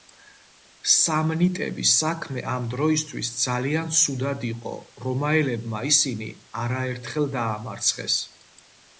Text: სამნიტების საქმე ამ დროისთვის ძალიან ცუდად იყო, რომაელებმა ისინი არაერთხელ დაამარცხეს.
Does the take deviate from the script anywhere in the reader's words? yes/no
no